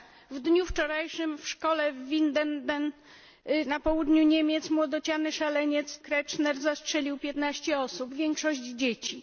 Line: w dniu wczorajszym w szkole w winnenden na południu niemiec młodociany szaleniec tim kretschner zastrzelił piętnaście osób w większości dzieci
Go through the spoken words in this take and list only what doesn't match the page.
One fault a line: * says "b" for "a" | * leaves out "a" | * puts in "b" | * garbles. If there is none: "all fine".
* leaves out "tim"